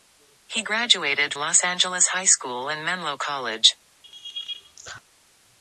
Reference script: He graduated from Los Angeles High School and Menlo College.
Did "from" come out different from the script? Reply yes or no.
yes